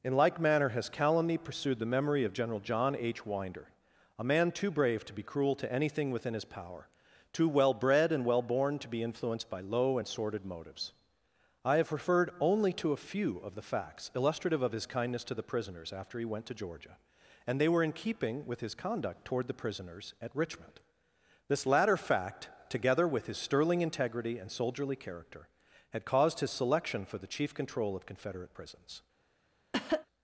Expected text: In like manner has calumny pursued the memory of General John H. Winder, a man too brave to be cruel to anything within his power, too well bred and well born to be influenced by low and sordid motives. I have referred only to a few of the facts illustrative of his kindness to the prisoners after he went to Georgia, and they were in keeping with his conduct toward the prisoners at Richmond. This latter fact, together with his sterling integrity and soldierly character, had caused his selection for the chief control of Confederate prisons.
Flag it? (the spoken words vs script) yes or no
no